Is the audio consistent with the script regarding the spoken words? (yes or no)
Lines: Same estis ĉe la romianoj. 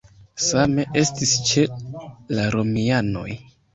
yes